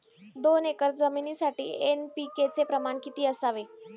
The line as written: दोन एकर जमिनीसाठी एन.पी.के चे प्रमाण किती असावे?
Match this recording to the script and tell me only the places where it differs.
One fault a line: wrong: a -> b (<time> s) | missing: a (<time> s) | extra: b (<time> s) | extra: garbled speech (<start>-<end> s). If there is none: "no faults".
no faults